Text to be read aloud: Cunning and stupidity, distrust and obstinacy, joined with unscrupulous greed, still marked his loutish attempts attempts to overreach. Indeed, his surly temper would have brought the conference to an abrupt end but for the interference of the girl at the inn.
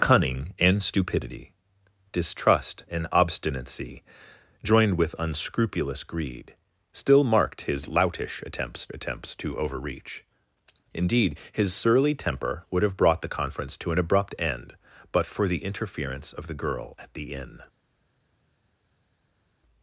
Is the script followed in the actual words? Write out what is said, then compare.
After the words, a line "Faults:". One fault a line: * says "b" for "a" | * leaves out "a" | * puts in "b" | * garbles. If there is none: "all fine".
Cunning and stupidity, distrust and obstinacy, joined with unscrupulous greed, still marked his loutish attempts attempts to overreach. Indeed, his surly temper would have brought the conference to an abrupt end but for the interference of the girl at the inn.
Faults:
all fine